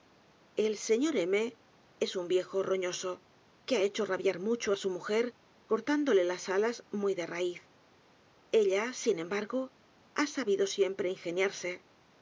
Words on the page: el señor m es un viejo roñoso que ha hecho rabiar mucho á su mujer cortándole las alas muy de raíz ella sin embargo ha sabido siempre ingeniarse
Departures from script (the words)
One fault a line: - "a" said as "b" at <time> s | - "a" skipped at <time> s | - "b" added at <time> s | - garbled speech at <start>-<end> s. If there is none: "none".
none